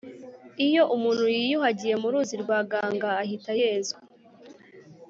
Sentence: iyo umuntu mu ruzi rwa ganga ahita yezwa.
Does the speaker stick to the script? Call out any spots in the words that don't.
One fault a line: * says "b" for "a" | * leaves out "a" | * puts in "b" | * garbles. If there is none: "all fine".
* puts in "yiyuhagiye"